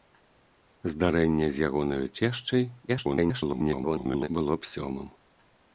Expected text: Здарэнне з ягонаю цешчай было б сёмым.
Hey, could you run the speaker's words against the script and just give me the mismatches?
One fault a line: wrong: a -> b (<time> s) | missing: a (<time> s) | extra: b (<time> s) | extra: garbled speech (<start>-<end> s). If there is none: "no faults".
extra: garbled speech (2.9-4.3 s)